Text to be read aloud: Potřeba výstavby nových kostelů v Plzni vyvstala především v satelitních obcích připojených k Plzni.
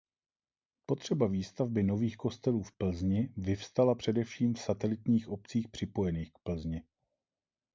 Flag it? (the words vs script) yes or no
no